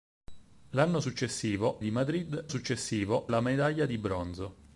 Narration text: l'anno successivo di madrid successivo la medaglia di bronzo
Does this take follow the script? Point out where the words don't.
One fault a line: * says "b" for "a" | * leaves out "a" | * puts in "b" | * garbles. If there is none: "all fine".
all fine